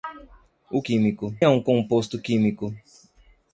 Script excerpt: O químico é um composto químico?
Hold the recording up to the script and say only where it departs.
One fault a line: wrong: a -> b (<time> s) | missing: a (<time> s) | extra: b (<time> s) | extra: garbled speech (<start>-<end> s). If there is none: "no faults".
no faults